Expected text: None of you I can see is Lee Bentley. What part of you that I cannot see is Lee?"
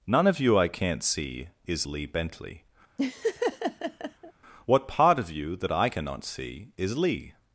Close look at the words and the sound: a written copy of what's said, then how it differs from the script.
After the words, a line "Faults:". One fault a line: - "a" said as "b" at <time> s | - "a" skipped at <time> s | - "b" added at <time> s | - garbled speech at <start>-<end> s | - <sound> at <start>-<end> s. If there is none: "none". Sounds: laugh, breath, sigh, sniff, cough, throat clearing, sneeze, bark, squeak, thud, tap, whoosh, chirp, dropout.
None of you I can't see is Lee Bentley. What part of you that I cannot see is Lee?"
Faults:
- "can" said as "can't" at 0.7 s
- laugh at 3.0-4.3 s